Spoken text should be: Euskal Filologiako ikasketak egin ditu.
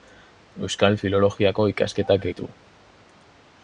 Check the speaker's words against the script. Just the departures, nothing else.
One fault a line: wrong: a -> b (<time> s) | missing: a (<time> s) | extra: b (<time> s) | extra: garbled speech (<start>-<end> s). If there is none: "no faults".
missing: egin (2.3 s)